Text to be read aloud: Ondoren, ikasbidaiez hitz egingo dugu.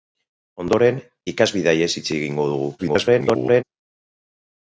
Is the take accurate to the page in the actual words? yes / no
no